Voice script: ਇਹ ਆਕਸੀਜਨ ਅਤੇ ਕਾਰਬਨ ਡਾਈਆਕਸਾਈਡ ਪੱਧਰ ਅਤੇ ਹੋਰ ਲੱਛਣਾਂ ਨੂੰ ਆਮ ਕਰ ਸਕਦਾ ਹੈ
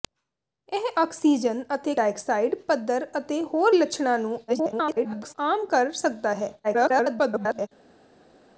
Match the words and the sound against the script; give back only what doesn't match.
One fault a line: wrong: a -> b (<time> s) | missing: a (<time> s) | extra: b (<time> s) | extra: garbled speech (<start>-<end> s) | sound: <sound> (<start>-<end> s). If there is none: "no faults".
missing: ਕਾਰਬਨ (1.9 s)
extra: garbled speech (4.5-5.3 s)
extra: garbled speech (6.6-7.7 s)